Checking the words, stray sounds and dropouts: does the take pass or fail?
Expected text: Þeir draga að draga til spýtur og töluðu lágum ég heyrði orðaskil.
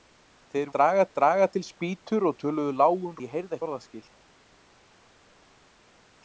pass